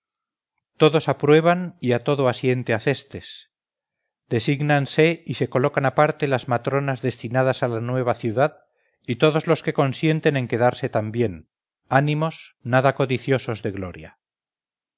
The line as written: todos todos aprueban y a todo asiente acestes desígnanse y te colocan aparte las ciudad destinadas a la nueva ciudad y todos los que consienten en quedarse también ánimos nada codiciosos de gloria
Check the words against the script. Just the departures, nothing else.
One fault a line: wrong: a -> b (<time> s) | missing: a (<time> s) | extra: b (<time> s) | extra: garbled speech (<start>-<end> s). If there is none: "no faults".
missing: todos (1.1 s)
wrong: te -> se (5.3 s)
wrong: ciudad -> matronas (6.5 s)